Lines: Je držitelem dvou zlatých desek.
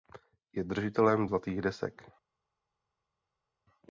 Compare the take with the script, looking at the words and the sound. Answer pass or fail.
fail